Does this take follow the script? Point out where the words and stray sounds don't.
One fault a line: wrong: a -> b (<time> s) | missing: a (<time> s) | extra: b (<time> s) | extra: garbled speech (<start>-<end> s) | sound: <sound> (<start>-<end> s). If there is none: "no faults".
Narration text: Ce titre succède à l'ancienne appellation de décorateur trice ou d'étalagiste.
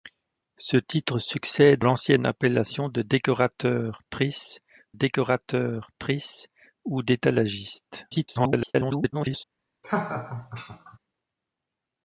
missing: à (1.9 s)
extra: décorateur trice (4.9 s)
extra: garbled speech (8.1-9.4 s)
sound: laugh (9.8-11.0 s)